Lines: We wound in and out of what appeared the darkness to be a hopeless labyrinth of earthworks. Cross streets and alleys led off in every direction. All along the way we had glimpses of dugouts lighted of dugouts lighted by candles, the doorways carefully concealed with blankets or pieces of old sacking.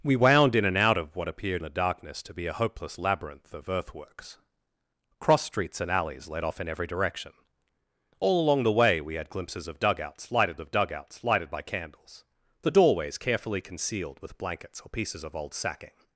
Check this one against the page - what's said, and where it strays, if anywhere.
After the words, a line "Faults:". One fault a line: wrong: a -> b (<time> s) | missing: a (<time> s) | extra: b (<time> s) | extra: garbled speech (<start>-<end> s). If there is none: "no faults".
We wound in and out of what appeared the darkness to be a hopeless labyrinth of earthworks. Cross streets and alleys led off in every direction. All along the way we had glimpses of dugouts lighted of dugouts lighted by candles, the doorways carefully concealed with blankets or pieces of old sacking.
Faults:
no faults